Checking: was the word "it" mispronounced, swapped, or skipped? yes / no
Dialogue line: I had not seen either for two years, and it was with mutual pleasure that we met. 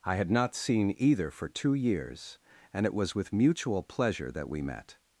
no